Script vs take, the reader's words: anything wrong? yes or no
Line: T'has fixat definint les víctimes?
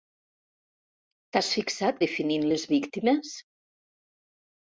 no